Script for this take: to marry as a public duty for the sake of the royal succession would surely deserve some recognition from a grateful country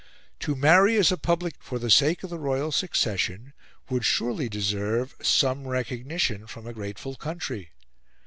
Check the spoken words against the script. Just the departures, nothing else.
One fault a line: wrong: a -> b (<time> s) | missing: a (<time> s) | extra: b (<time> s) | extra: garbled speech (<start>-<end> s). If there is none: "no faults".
missing: duty (1.6 s)